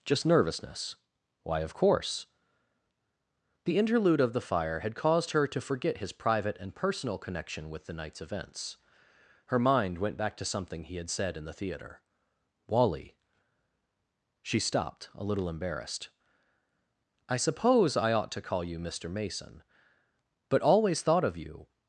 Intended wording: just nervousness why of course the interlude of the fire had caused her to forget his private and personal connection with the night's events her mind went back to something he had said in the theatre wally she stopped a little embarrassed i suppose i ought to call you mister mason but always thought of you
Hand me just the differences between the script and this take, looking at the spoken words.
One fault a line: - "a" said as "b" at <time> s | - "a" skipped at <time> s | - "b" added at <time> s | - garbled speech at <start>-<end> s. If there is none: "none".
none